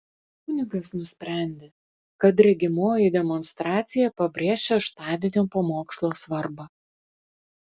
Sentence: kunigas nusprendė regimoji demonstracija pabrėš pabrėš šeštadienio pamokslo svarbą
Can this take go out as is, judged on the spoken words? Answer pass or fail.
fail